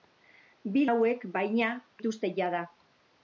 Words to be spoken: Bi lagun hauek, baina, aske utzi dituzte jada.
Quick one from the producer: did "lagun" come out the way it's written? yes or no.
no